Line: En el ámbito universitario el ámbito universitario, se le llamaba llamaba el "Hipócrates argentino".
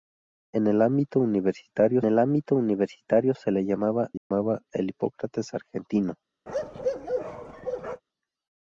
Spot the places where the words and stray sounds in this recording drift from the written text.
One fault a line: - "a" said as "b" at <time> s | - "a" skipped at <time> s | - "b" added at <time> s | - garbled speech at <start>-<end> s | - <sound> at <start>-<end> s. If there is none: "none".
- dropout at 4.2-4.3 s
- bark at 6.5-8.0 s